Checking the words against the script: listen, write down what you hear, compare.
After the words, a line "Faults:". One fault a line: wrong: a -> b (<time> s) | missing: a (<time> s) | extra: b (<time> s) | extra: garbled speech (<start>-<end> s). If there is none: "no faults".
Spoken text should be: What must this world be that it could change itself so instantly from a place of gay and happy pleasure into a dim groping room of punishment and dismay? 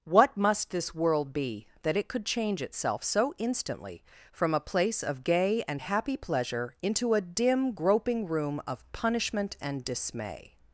What must this world be that it could change itself so instantly from a place of gay and happy pleasure into a dim groping room of punishment and dismay?
Faults:
no faults